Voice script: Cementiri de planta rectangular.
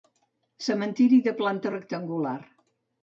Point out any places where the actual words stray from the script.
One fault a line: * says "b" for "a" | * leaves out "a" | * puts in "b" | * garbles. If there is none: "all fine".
all fine